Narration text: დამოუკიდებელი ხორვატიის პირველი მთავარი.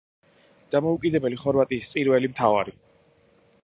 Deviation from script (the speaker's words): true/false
false